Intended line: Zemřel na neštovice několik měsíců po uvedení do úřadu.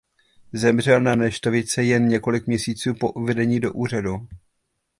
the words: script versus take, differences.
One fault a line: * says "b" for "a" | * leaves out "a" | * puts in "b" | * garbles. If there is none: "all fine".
* puts in "jen"